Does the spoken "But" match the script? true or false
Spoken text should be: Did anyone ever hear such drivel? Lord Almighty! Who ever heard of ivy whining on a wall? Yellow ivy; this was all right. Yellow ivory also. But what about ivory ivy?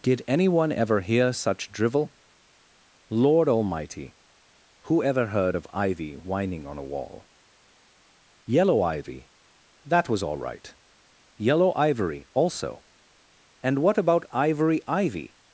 false